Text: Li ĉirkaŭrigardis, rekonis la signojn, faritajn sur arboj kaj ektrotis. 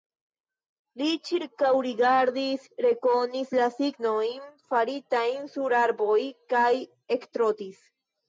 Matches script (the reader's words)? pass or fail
pass